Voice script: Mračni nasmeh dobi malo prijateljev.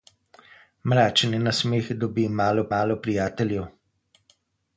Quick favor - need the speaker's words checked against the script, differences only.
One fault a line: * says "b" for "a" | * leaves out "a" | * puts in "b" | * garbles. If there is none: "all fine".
* puts in "malo"